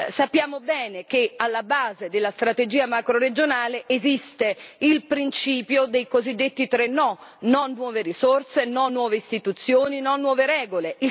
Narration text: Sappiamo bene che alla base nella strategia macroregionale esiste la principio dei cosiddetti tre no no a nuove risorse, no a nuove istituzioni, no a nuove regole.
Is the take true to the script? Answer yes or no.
no